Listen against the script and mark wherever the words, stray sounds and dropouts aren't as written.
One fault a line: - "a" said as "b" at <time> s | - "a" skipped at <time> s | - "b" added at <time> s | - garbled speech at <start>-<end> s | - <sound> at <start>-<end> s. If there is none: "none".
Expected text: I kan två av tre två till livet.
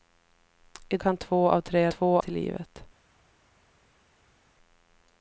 none